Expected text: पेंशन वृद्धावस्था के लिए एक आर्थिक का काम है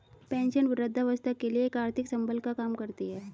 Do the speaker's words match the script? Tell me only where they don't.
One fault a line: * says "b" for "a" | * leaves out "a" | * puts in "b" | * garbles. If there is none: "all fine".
* puts in "संबल"
* puts in "करती"